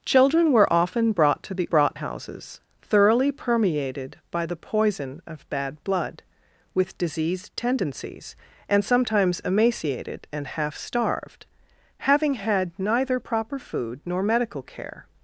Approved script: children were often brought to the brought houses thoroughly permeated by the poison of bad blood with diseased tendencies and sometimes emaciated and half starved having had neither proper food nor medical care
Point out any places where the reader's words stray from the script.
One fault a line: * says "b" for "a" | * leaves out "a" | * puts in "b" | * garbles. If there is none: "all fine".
all fine